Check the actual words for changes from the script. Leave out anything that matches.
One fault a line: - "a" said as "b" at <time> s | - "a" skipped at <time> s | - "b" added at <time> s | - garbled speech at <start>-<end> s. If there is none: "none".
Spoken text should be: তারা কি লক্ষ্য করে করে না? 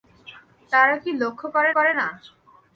none